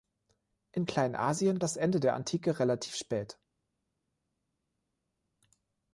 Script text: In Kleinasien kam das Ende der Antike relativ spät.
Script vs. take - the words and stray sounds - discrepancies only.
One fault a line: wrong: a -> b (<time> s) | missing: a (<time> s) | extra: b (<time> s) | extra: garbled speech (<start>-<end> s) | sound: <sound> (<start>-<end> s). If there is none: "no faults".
missing: kam (1.6 s)